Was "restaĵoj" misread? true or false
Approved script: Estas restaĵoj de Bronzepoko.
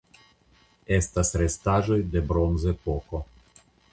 false